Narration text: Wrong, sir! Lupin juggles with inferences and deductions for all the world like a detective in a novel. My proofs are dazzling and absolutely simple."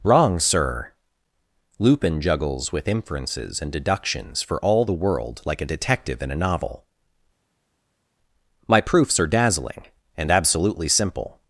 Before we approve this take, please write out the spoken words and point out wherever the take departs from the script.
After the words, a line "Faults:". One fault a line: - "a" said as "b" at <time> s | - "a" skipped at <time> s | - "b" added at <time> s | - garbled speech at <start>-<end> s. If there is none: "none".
Wrong, sir! Lupin juggles with inferences and deductions for all the world like a detective in a novel. My proofs are dazzling and absolutely simple."
Faults:
none